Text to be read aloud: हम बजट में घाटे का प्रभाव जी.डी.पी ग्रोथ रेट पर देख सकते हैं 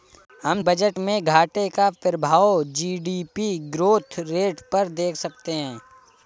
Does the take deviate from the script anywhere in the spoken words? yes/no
no